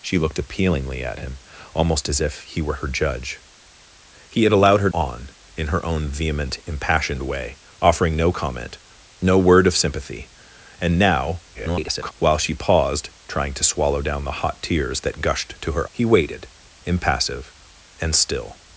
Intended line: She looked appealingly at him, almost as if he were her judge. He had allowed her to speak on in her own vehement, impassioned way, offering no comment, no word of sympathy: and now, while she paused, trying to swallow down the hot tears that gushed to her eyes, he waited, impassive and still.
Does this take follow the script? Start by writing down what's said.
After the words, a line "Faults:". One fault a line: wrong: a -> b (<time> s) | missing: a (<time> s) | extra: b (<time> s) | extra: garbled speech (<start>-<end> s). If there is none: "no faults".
She looked appealingly at him, almost as if he were her judge. He had allowed her on in her own vehement, impassioned way, offering no comment, no word of sympathy: and now, [garbled] while she paused, trying to swallow down the hot tears that gushed to her he waited, impassive and still.
Faults:
missing: to speak (4.9 s)
extra: garbled speech (11.5-12.1 s)
missing: eyes (15.9 s)